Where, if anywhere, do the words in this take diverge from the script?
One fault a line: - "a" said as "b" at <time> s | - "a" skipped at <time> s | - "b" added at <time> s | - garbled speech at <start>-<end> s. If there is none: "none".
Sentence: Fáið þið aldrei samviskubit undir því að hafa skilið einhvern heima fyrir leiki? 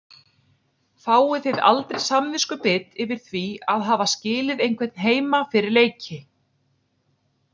- "undir" said as "yfir" at 3.0 s